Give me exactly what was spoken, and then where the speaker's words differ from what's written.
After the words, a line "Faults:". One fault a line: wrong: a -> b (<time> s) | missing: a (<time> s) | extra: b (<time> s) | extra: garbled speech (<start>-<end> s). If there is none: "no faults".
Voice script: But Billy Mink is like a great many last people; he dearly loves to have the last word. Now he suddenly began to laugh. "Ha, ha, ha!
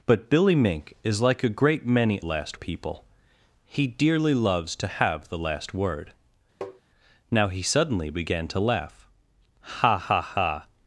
But Billy Mink is like a great many last people; he dearly loves to have the last word. Now he suddenly began to laugh. "Ha, ha, ha!
Faults:
no faults